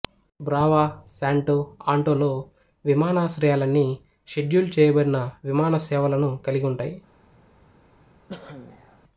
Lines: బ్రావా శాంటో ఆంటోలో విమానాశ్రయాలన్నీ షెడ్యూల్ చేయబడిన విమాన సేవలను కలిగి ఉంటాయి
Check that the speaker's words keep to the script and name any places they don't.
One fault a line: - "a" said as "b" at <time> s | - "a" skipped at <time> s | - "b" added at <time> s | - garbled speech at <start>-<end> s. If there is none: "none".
none